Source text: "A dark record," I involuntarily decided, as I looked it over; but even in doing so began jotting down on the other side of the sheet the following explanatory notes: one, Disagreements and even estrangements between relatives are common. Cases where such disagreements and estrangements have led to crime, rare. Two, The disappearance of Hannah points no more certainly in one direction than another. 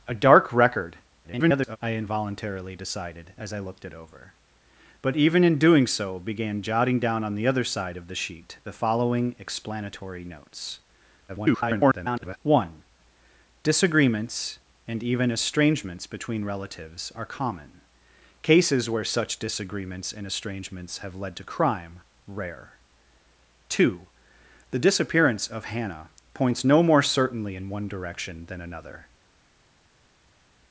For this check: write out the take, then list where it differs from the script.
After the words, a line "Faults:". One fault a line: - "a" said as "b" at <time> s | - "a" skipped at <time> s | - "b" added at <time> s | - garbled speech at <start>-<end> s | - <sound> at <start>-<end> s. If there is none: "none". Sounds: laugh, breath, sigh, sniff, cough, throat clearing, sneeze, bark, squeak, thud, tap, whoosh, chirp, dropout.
"A dark record," [garbled] I involuntarily decided, as I looked it over; but even in doing so began jotting down on the other side of the sheet the following explanatory notes: [garbled] one, Disagreements and even estrangements between relatives are common. Cases where such disagreements and estrangements have led to crime, rare. Two, The disappearance of Hannah points no more certainly in one direction than another.
Faults:
- garbled speech at 1.2-1.8 s
- garbled speech at 11.3-12.4 s